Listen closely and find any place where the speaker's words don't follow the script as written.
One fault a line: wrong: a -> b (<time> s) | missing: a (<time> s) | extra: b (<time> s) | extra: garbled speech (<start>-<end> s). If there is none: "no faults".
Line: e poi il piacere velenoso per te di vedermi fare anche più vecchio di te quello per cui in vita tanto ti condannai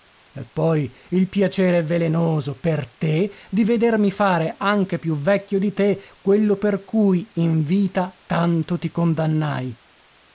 no faults